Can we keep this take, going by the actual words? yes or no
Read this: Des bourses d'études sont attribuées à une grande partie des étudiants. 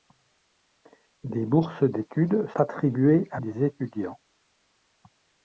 no